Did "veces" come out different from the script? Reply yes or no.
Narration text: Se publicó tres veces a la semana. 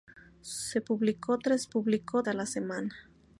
yes